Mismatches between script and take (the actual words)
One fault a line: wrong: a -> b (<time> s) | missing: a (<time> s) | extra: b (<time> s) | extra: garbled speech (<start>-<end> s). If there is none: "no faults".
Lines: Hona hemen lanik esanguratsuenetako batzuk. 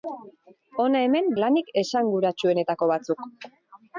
no faults